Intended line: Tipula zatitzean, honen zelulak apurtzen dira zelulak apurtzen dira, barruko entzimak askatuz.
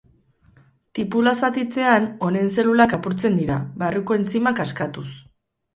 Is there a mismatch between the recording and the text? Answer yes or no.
yes